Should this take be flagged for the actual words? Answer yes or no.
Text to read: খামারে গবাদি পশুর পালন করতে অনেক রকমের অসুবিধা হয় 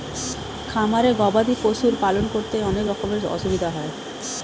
no